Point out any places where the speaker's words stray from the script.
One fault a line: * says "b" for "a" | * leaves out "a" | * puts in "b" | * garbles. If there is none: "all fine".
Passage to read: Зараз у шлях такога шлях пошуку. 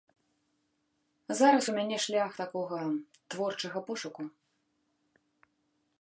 * puts in "мяне"
* says "творчага" for "шлях"